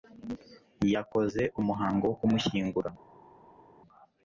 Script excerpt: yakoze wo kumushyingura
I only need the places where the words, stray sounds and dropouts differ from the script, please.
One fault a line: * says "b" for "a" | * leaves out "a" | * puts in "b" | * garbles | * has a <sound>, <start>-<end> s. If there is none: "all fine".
* puts in "umuhango"